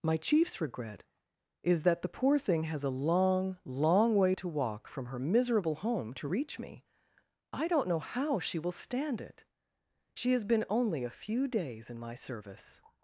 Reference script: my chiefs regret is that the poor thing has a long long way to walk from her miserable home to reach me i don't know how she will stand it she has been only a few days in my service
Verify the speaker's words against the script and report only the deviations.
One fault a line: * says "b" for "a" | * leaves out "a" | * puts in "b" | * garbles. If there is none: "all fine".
all fine